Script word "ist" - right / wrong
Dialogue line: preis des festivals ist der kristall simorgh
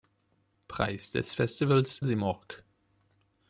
wrong